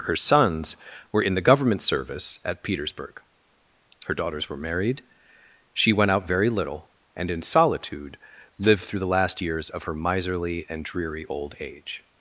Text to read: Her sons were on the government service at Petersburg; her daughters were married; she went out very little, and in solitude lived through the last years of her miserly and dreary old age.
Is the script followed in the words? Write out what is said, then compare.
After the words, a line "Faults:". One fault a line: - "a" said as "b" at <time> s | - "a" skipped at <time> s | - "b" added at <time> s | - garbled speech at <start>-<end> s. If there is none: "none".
Her sons were in the government service at Petersburg; her daughters were married; she went out very little, and in solitude lived through the last years of her miserly and dreary old age.
Faults:
- "on" said as "in" at 1.2 s